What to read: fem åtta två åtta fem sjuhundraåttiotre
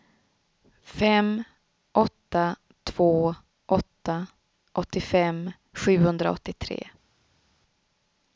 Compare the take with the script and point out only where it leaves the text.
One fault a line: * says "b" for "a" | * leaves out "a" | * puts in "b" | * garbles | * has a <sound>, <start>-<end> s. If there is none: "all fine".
* says "åttiofem" for "fem"